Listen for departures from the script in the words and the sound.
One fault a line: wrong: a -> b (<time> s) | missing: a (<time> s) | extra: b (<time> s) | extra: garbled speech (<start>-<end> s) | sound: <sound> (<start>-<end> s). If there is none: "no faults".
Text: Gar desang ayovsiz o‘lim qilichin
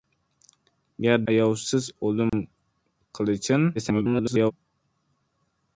missing: desang (1.2 s)
sound: dropout (2.3-2.3 s)
extra: garbled speech (3.7-4.5 s)